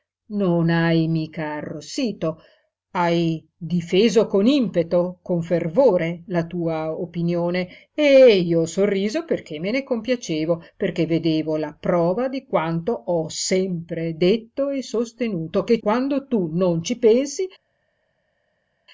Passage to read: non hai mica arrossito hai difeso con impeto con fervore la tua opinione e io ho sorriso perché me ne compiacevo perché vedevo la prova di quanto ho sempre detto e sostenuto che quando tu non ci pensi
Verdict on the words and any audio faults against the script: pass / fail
pass